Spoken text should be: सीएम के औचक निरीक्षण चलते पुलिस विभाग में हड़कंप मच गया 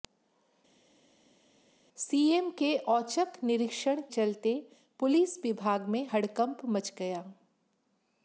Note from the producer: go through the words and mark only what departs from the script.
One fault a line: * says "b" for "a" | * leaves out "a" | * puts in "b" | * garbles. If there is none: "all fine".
all fine